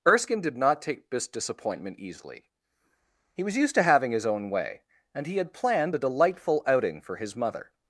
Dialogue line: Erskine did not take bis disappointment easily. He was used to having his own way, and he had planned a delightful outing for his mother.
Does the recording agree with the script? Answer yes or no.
no